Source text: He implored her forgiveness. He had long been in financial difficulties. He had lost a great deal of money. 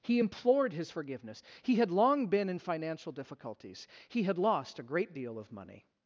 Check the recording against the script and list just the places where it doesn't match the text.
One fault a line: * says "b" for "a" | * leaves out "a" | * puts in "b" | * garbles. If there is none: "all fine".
* says "his" for "her"